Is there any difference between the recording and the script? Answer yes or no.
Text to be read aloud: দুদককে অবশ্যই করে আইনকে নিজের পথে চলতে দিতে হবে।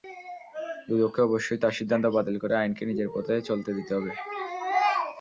yes